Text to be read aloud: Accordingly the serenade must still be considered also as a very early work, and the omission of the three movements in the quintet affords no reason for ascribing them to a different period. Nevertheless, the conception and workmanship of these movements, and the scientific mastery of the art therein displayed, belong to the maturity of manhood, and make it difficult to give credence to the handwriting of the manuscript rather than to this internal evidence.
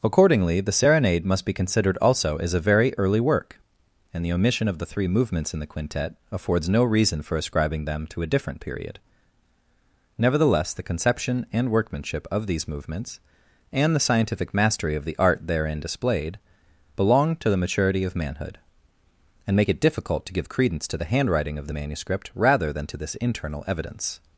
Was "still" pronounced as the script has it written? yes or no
no